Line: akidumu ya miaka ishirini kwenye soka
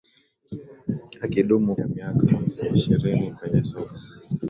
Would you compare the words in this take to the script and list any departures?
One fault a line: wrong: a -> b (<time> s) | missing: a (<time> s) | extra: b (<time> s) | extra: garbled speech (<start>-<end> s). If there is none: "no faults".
no faults